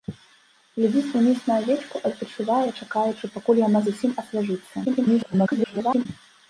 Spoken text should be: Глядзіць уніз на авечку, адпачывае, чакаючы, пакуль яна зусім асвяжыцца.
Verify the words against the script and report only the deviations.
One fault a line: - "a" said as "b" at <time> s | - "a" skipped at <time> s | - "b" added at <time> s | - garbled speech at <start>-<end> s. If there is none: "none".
- garbled speech at 4.8-6.1 s